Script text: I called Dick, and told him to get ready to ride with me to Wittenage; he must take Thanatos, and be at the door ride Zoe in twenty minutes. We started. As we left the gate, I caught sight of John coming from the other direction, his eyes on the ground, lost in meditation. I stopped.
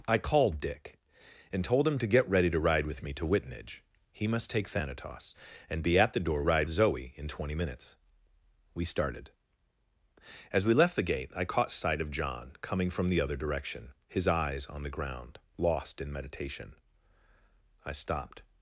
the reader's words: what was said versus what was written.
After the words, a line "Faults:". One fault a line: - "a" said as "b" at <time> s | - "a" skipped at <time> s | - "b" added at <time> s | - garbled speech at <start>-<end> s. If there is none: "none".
I called Dick, and told him to get ready to ride with me to Wittenage; he must take Thanatos, and be at the door ride Zoe in twenty minutes. We started. As we left the gate, I caught sight of John coming from the other direction, his eyes on the ground, lost in meditation. I stopped.
Faults:
none